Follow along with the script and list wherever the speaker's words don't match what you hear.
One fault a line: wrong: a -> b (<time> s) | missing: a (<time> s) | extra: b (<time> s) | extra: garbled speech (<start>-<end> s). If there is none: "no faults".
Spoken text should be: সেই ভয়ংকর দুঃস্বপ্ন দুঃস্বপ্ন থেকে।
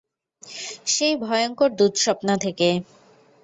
missing: দুঃস্বপ্ন (2.3 s)